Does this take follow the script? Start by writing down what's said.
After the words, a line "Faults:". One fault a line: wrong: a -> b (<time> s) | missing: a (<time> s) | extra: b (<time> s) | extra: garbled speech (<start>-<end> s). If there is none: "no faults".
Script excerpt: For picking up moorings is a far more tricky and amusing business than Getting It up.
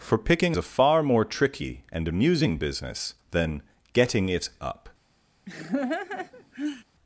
For picking a far more tricky and amusing business than Getting It up.
Faults:
missing: up moorings is (0.6 s)